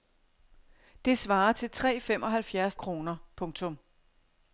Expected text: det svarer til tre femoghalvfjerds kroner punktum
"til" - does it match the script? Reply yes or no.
yes